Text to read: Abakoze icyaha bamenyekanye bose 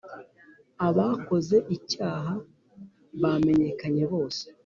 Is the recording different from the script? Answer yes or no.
no